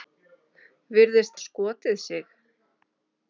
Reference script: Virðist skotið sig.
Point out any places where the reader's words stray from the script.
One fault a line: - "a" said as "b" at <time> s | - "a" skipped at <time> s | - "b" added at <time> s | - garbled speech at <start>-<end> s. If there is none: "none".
none